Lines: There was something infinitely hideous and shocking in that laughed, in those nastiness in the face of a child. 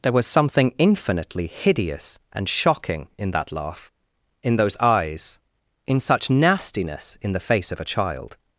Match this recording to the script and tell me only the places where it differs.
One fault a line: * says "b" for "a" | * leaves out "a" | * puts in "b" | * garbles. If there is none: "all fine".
* says "laugh" for "laughed"
* puts in "eyes in such"